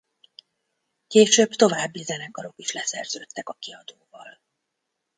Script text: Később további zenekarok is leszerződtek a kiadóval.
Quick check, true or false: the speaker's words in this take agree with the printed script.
true